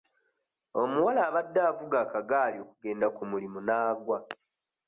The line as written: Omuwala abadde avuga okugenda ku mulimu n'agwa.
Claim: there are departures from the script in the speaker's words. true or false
true